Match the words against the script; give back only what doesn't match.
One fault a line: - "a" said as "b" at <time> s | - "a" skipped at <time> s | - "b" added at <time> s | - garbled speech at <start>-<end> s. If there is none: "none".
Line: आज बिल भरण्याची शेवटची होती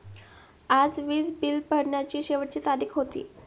- "वीज" added at 1.0 s
- "तारीख" added at 2.6 s